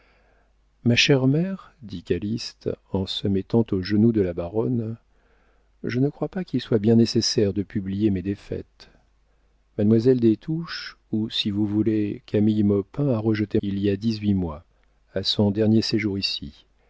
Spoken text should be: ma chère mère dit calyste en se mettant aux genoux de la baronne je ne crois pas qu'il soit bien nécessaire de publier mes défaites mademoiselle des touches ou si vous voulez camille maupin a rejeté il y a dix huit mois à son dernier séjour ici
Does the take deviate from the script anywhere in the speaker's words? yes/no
no